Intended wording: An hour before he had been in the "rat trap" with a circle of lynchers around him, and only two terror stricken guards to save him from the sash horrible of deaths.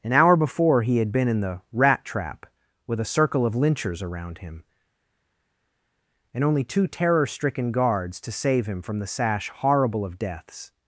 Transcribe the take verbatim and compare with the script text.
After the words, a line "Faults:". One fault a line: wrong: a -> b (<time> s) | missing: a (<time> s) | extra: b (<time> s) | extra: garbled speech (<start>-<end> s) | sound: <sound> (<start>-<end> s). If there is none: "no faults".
An hour before he had been in the "rat trap" with a circle of lynchers around him, and only two terror stricken guards to save him from the sash horrible of deaths.
Faults:
no faults